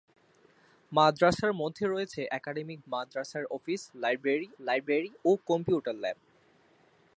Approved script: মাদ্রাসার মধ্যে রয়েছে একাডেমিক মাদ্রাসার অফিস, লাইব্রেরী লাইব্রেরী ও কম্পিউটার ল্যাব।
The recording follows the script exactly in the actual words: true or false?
true